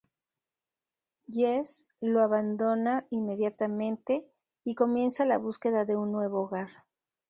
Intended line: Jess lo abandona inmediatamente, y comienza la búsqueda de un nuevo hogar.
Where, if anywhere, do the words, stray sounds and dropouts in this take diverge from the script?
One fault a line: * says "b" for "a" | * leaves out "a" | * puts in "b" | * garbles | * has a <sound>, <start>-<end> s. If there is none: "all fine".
all fine